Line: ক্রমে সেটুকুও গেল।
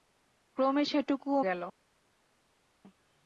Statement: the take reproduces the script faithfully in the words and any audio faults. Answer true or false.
true